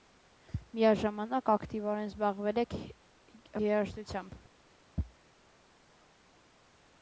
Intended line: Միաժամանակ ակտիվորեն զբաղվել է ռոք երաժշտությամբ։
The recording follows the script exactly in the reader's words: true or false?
false